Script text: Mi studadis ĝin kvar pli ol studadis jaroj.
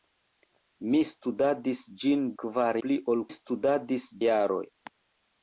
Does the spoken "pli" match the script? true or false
true